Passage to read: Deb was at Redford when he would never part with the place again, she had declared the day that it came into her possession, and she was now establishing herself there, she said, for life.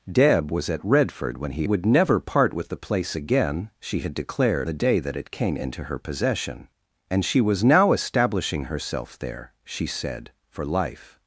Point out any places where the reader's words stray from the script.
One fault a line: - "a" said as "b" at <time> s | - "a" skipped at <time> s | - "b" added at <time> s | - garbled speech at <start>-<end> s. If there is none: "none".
none